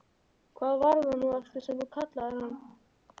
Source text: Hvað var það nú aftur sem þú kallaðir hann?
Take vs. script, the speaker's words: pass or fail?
pass